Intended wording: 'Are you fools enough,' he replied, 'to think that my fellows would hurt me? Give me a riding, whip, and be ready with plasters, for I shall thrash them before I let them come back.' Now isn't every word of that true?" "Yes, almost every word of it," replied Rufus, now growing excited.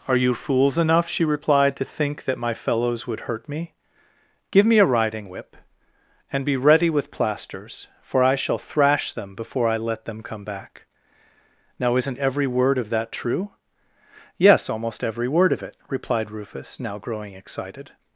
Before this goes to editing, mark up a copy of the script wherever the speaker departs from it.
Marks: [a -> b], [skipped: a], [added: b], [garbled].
'Are you fools enough,' [he -> she] replied, 'to think that my fellows would hurt me? Give me a riding, whip, and be ready with plasters, for I shall thrash them before I let them come back.' Now isn't every word of that true?" "Yes, almost every word of it," replied Rufus, now growing excited.